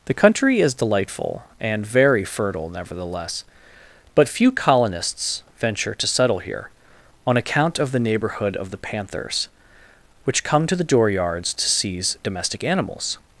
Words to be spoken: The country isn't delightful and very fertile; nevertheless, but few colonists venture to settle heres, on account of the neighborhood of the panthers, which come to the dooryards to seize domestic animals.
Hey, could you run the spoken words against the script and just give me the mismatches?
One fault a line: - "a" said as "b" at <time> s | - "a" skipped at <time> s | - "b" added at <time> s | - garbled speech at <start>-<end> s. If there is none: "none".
- "isn't" said as "is" at 0.6 s
- "heres" said as "here" at 6.4 s